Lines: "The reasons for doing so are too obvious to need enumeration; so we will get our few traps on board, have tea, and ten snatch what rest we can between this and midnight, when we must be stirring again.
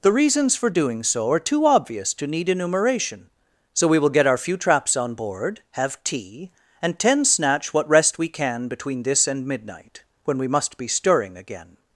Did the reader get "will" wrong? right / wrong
right